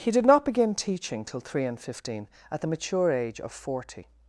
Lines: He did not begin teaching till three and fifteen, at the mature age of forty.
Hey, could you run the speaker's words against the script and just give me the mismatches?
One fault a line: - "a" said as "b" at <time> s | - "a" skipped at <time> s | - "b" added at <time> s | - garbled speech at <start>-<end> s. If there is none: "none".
none